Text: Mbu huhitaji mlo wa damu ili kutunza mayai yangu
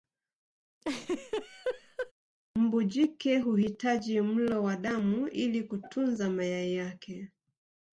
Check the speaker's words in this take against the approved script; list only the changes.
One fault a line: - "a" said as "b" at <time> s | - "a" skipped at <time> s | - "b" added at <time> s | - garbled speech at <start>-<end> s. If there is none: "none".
- "jike" added at 2.8 s
- "yangu" said as "yake" at 6.7 s